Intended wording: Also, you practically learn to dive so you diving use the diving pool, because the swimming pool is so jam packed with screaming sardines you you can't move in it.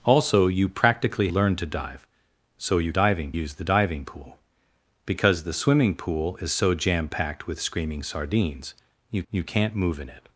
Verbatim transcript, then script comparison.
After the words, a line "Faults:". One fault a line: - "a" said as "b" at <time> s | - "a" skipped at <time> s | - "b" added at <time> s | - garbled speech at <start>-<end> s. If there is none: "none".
Also, you practically learn to dive so you diving use the diving pool, because the swimming pool is so jam packed with screaming sardines you you can't move in it.
Faults:
none